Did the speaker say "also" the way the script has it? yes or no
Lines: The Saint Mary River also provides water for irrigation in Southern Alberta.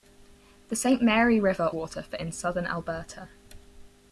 no